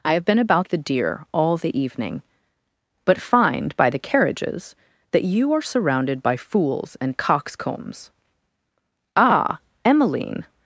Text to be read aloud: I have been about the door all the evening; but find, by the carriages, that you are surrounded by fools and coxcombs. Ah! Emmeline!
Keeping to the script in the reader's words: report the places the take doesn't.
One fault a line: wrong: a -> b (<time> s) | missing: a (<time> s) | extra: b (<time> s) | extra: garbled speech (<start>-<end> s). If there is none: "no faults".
wrong: door -> deer (0.8 s)